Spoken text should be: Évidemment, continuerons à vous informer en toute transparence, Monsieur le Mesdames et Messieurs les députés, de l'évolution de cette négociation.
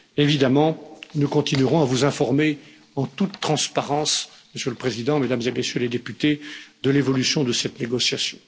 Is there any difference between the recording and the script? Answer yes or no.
yes